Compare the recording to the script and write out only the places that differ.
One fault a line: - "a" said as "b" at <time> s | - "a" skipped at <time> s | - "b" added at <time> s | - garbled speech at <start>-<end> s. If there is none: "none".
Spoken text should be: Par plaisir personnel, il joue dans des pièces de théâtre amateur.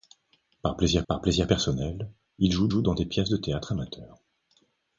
- "par plaisir" added at 1.1 s
- "joue" added at 2.7 s